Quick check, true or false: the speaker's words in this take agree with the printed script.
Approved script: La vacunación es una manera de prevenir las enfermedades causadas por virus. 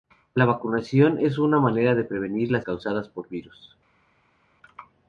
false